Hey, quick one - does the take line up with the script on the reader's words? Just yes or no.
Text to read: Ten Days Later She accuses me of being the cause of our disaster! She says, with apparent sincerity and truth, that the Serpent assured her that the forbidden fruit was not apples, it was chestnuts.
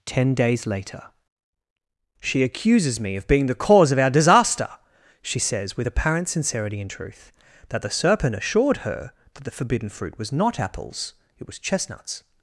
yes